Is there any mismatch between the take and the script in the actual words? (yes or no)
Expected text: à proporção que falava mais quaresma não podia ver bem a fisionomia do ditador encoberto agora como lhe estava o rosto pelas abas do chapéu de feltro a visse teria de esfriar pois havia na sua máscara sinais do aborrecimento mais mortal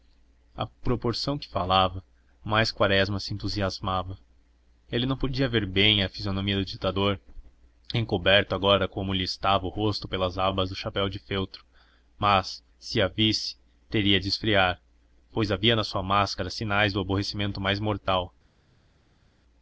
yes